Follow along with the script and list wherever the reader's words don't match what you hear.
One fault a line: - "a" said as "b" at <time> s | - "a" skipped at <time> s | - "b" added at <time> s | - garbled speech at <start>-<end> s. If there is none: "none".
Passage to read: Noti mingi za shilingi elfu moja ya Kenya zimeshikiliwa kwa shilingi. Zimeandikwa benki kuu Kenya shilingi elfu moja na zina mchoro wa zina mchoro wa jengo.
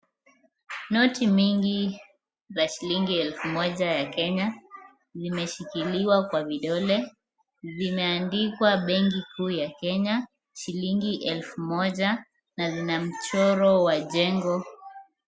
- "shilingi" said as "vidole" at 6.4 s
- "ya" added at 9.5 s
- "zina mchoro wa" skipped at 14.0 s